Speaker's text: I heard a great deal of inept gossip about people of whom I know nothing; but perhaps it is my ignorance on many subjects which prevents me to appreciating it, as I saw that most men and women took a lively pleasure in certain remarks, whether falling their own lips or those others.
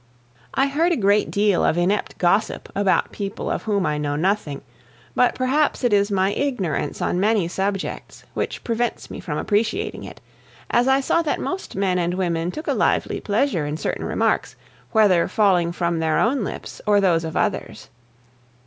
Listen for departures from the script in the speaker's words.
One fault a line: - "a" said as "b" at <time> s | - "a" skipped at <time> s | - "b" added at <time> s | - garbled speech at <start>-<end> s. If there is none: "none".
- "to" said as "from" at 9.2 s
- "from" added at 15.7 s
- "of" added at 17.2 s